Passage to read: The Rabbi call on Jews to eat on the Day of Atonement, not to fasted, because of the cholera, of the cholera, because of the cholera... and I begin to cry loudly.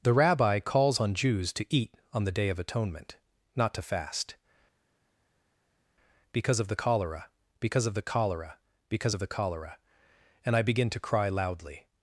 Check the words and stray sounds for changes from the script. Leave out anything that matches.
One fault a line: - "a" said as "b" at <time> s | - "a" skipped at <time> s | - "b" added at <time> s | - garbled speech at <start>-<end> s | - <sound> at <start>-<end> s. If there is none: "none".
- "call" said as "calls" at 0.6 s
- "fasted" said as "fast" at 3.8 s
- "because" added at 7.6 s